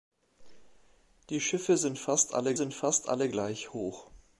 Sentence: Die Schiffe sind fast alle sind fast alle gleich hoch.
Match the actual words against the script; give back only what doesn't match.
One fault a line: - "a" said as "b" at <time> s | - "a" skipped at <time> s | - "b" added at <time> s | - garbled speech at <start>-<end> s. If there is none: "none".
none